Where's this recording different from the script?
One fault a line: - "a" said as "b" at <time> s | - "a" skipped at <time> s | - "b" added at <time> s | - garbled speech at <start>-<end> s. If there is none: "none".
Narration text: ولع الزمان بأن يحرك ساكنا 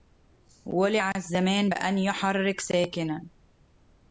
none